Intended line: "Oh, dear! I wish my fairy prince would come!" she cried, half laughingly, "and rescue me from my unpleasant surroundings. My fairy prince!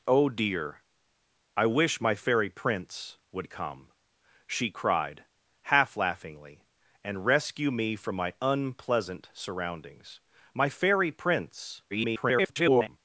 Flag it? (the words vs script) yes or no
yes